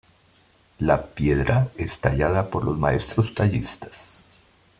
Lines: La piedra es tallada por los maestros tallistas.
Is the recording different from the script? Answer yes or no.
no